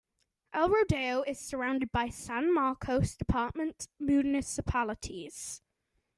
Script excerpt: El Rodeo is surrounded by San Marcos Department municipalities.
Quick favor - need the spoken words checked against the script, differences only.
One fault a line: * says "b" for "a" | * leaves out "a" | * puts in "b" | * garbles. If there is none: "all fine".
all fine